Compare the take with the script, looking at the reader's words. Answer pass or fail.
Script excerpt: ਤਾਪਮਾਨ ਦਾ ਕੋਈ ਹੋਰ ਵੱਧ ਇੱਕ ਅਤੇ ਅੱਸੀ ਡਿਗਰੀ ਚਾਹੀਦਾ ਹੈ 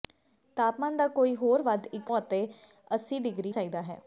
pass